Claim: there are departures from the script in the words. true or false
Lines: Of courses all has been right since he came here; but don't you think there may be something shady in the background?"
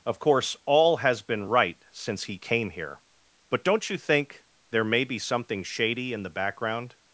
true